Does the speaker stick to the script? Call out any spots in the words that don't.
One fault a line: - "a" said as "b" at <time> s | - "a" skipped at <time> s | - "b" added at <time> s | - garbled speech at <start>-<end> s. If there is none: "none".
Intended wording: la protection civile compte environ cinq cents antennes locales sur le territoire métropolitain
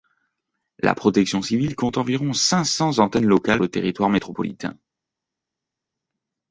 - "sur" skipped at 3.6 s